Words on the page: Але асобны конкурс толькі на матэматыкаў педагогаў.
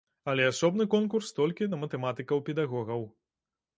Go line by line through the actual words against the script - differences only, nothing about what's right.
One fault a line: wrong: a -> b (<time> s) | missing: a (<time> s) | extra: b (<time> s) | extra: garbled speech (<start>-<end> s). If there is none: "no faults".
no faults